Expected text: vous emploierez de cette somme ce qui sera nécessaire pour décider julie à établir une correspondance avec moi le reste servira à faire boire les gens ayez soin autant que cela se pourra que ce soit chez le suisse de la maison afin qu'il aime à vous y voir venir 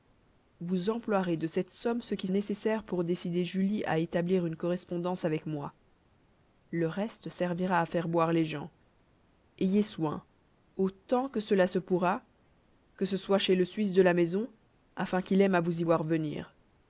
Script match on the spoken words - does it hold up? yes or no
no